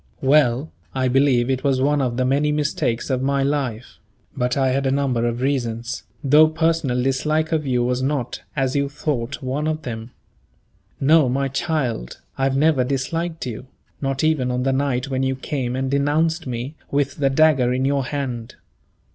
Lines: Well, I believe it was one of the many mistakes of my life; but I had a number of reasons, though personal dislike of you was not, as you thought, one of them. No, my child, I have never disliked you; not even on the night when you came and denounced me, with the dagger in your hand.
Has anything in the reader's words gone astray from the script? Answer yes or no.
no